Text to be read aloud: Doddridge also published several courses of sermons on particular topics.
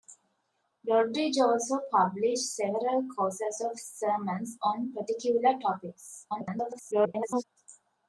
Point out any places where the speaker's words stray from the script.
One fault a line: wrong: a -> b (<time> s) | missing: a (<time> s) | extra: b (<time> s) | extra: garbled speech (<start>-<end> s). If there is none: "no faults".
extra: garbled speech (6.3-7.4 s)